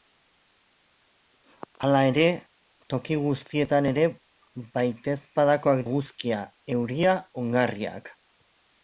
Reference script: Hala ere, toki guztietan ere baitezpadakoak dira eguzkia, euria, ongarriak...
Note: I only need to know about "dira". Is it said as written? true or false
false